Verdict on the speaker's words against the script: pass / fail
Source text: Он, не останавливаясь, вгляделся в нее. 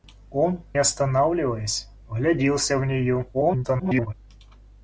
fail